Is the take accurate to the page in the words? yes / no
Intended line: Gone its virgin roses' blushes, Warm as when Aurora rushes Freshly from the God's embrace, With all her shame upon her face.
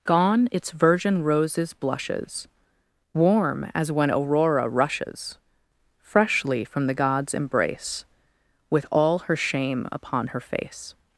yes